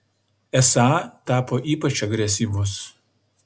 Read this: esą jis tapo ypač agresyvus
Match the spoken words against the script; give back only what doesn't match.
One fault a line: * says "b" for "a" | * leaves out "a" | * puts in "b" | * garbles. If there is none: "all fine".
* leaves out "jis"